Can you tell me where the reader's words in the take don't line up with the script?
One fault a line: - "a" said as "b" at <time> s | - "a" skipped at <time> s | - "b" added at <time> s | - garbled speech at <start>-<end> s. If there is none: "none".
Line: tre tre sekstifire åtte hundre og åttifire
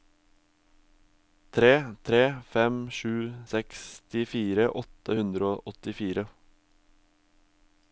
- "fem sju" added at 2.5 s